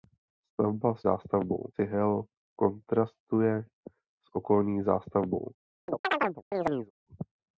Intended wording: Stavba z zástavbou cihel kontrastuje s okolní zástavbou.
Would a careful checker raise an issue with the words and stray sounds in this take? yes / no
yes